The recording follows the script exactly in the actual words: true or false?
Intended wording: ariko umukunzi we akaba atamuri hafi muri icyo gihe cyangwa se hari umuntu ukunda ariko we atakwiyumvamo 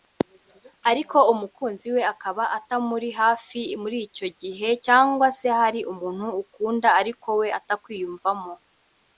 true